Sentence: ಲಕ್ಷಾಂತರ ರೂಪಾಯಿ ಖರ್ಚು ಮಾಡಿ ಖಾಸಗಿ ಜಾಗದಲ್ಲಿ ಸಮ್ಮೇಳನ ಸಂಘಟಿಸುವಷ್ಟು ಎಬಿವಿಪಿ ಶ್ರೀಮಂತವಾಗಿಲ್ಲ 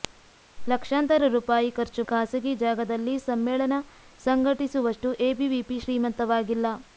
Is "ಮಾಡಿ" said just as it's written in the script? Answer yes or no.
no